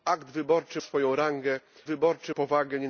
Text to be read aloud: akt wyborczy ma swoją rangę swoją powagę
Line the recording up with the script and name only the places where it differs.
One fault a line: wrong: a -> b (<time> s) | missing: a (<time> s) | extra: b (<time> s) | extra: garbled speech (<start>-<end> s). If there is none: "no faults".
missing: ma (0.8 s)
wrong: swoją -> wyborczy (1.8 s)